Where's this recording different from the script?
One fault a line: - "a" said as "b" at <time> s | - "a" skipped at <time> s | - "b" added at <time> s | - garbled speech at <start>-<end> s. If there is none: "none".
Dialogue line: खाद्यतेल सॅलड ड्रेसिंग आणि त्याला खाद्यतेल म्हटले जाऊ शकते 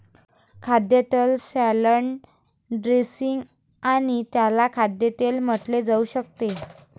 none